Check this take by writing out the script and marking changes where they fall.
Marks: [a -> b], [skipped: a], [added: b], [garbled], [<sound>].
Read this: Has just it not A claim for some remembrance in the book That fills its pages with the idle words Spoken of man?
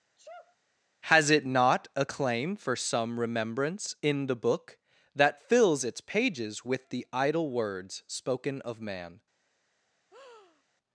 [sneeze] Has [skipped: just] it not A claim for some remembrance in the book That fills its pages with the idle words Spoken of man? [breath]